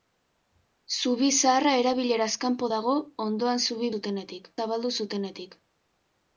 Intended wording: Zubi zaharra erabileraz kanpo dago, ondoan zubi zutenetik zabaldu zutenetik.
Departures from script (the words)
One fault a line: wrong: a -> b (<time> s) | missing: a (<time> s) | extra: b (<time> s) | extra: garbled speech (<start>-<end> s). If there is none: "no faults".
no faults